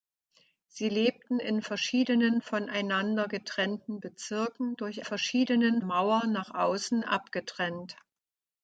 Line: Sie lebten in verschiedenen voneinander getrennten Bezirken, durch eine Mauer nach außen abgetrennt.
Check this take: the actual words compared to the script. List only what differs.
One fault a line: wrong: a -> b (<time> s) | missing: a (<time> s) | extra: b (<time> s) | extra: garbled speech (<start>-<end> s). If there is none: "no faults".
wrong: eine -> verschiedenen (5.0 s)